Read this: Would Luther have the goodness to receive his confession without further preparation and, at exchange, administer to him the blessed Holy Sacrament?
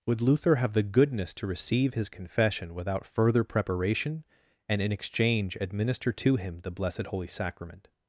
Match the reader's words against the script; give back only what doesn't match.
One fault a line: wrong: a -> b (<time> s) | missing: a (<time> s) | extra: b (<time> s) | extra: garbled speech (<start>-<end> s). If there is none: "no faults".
wrong: at -> in (4.8 s)